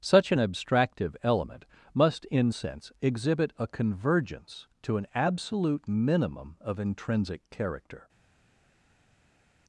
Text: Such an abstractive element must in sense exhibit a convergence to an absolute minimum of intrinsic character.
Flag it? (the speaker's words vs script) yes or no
no